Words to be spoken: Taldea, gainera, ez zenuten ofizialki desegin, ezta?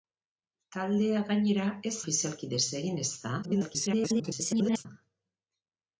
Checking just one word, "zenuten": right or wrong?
wrong